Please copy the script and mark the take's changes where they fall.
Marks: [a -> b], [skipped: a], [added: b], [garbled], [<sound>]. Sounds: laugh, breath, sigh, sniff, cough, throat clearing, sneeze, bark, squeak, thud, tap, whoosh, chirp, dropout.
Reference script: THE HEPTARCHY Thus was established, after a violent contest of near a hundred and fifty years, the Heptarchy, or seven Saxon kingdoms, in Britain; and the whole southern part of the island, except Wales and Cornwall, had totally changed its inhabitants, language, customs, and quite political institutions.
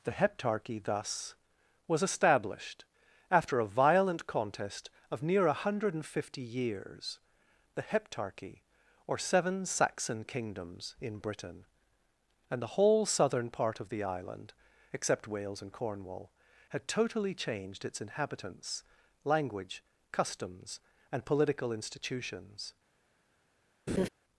THE HEPTARCHY Thus was established, after a violent contest of near a hundred and fifty years, the Heptarchy, or seven Saxon kingdoms, in Britain; and the whole southern part of the island, except Wales and Cornwall, had totally changed its inhabitants, language, customs, and [skipped: quite] political institutions. [laugh]